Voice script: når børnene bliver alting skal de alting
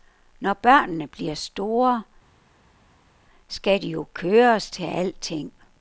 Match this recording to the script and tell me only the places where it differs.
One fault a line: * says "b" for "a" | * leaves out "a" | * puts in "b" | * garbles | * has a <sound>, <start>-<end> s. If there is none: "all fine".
* says "store" for "alting"
* puts in "jo køres til"